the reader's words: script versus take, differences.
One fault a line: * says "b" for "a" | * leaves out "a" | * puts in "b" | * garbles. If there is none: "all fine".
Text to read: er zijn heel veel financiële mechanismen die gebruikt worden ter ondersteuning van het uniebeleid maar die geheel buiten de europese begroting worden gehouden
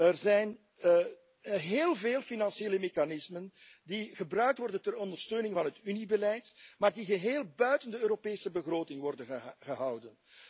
all fine